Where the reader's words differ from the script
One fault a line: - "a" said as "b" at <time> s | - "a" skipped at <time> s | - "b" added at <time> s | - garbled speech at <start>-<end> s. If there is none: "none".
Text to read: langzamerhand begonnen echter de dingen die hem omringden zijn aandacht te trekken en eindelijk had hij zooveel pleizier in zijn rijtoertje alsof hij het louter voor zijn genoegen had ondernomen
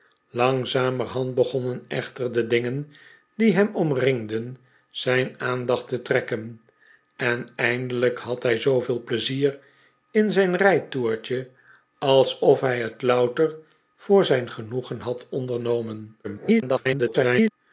- garbled speech at 16.2-17.5 s